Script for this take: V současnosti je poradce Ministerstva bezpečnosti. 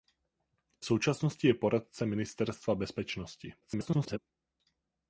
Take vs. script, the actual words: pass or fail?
fail